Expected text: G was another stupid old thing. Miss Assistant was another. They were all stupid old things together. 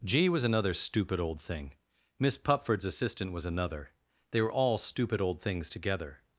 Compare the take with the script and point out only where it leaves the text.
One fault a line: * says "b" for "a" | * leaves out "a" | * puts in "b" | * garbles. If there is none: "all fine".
* puts in "Pupford's"